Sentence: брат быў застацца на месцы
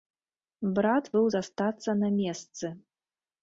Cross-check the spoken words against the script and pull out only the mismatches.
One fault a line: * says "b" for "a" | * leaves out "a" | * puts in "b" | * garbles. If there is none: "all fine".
all fine